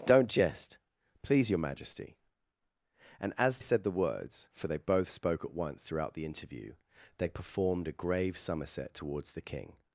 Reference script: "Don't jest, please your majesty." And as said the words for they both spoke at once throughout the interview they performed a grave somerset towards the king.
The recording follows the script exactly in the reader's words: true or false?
true